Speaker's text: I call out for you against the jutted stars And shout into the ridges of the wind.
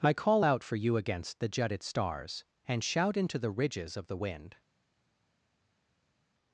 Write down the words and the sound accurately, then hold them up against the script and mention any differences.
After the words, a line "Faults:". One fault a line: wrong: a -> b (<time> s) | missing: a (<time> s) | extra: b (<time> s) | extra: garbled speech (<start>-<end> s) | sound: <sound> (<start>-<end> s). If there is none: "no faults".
I call out for you against the jutted stars And shout into the ridges of the wind.
Faults:
no faults